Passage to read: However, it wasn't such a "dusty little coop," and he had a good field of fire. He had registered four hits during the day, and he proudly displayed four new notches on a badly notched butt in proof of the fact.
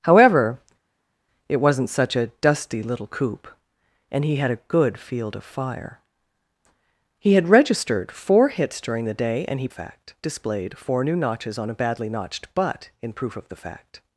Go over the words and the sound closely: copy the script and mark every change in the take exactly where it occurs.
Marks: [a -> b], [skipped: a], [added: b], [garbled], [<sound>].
However, it wasn't such a "dusty little coop," and he had a good field of fire. He had registered four hits during the day, and he [proudly -> fact] displayed four new notches on a badly notched butt in proof of the fact.